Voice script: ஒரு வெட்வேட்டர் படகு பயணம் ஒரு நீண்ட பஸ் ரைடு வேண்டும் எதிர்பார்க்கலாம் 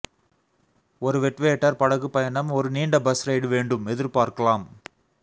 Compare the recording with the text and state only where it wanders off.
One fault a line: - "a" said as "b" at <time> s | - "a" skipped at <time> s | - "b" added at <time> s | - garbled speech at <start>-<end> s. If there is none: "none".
none